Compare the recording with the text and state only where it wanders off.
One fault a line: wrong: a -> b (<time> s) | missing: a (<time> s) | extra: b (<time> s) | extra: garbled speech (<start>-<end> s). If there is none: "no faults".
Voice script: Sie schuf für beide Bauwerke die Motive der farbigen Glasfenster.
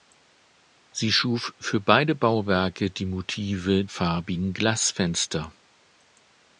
missing: der (3.9 s)